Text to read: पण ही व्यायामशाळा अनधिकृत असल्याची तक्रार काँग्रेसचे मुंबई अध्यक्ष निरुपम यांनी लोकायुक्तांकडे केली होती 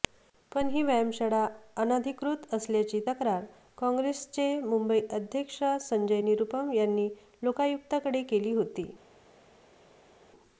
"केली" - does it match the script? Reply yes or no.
yes